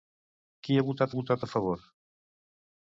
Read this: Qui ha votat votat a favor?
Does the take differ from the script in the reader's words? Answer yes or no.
no